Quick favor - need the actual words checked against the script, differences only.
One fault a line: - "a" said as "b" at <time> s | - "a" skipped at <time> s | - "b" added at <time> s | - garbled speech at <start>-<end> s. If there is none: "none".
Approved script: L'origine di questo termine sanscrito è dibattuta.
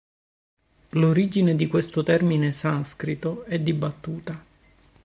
none